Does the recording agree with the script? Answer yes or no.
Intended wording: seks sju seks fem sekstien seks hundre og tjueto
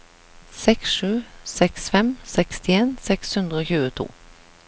yes